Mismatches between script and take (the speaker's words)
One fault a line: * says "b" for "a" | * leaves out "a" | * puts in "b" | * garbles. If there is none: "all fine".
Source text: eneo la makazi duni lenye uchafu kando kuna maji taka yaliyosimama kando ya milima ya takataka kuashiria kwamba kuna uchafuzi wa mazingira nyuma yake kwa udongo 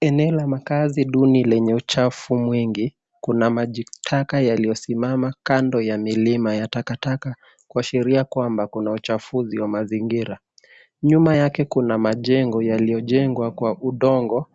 * says "mwingi" for "kando"
* puts in "kuna majengo yaliyojengwa"